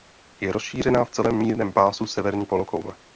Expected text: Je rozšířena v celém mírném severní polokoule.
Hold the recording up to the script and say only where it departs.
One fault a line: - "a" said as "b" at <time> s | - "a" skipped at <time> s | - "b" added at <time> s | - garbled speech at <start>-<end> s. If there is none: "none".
- "pásu" added at 1.7 s